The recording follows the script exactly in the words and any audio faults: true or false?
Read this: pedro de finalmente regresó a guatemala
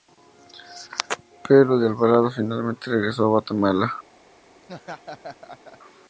false